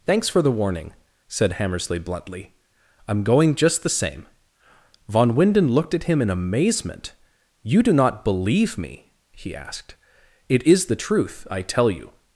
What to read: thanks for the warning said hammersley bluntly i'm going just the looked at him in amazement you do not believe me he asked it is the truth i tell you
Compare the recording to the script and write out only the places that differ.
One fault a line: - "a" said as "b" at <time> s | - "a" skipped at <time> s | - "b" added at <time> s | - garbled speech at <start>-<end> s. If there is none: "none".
- "same von winden" added at 3.9 s